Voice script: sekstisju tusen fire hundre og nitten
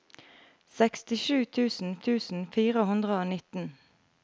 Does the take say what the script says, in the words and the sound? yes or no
no